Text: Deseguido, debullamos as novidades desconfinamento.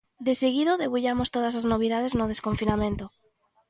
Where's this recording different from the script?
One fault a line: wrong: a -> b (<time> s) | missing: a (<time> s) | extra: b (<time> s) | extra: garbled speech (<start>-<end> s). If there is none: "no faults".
extra: todas (1.4 s)
extra: no (2.2 s)